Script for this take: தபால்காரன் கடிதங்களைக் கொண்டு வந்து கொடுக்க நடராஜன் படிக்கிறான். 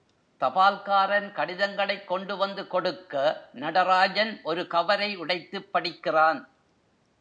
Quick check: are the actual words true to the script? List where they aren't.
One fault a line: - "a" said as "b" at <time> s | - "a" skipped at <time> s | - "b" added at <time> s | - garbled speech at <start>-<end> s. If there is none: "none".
- "ஒரு கவரை உடைத்துப்" added at 4.4 s